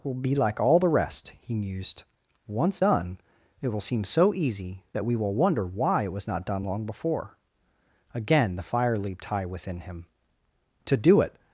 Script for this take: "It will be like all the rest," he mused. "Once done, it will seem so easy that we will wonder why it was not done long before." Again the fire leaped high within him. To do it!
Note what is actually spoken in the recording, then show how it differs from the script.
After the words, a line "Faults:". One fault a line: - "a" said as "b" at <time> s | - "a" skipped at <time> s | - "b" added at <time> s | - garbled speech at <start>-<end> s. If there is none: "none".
will be like all the rest," he mused. "Once done, it will seem so easy that we will wonder why it was not done long before." Again the fire leaped high within him. To do it!
Faults:
- "It" skipped at 0.0 s